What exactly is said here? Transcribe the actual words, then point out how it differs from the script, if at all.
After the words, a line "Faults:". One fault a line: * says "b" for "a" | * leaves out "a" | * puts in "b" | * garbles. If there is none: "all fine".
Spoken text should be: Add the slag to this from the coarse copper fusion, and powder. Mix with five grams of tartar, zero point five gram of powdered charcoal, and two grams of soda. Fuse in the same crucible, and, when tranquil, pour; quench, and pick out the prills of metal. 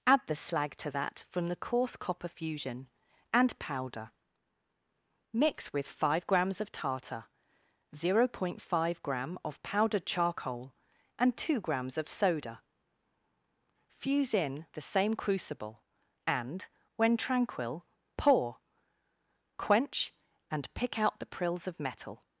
Add the slag to that from the coarse copper fusion, and powder. Mix with five grams of tartar, zero point five gram of powdered charcoal, and two grams of soda. Fuse in the same crucible, and, when tranquil, pour; quench, and pick out the prills of metal.
Faults:
* says "that" for "this"